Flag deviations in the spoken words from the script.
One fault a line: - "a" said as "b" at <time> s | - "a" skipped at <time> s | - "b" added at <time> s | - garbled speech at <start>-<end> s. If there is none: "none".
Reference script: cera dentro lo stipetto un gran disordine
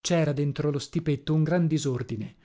none